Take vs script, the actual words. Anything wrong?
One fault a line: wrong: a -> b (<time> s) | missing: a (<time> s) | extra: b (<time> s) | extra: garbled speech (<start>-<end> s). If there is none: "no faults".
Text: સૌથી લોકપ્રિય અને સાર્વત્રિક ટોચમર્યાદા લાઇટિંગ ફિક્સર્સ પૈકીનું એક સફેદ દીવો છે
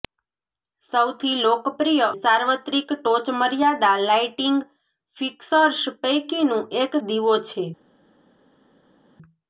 missing: અને (2.1 s)
missing: સફેદ (6.9 s)